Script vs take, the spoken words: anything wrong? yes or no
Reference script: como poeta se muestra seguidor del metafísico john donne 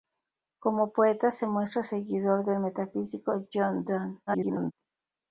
yes